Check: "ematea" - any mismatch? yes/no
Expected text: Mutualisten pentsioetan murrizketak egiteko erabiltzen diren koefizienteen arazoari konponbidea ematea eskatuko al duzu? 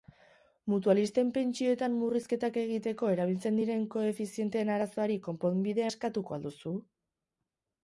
yes